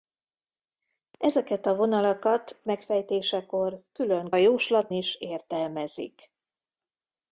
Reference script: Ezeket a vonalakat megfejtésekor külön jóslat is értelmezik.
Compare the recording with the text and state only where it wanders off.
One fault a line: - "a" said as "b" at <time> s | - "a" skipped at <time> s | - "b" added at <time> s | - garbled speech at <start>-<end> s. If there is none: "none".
none